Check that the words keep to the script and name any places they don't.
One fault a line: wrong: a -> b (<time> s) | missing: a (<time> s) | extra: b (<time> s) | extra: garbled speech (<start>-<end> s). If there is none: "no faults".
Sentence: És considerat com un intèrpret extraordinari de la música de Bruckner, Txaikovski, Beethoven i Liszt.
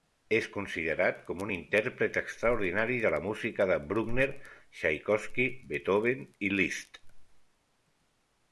no faults